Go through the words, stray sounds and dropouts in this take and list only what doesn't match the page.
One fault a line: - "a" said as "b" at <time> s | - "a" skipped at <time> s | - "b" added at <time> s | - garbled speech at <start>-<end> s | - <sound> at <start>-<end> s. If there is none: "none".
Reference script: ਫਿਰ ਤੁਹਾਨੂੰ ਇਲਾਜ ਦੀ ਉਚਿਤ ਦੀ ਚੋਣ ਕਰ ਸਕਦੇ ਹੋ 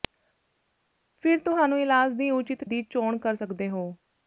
none